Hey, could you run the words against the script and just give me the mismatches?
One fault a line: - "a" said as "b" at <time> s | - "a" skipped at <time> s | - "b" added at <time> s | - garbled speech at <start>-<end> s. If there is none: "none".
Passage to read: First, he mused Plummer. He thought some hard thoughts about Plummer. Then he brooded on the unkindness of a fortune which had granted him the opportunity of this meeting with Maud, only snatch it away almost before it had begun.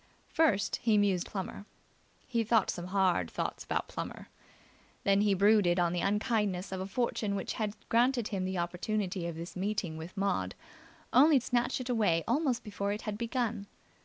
none